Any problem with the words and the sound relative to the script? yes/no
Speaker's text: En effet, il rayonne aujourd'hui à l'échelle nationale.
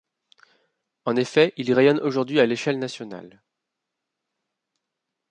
no